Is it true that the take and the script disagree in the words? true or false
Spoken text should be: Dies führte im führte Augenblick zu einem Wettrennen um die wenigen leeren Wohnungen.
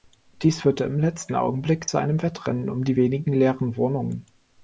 true